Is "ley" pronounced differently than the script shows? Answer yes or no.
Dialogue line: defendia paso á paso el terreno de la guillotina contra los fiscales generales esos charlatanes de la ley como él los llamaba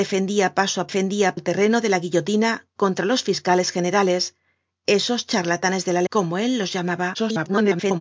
yes